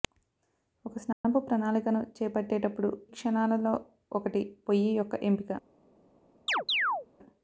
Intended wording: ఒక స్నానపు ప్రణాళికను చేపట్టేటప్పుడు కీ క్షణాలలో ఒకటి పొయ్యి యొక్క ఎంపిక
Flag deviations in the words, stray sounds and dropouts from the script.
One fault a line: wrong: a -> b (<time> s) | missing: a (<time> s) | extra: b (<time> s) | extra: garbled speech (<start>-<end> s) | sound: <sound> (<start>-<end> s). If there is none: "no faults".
sound: dropout (1.1-1.2 s)
missing: కీ (2.9 s)
sound: chirp (6.5-7.1 s)